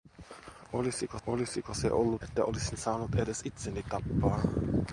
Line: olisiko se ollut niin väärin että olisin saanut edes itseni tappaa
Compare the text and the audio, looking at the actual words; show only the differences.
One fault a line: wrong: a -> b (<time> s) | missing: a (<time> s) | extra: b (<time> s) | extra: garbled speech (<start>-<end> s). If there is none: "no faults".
extra: olisiko (1.3 s)
missing: niin väärin (2.2 s)